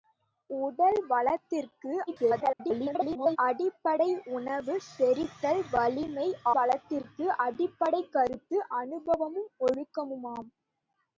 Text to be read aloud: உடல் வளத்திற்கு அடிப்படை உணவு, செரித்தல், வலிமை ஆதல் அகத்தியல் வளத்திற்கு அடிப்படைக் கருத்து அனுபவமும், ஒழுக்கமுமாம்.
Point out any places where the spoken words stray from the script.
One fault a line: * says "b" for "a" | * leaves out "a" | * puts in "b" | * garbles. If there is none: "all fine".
* garbles
* leaves out "ஆதல் அகத்தியல்"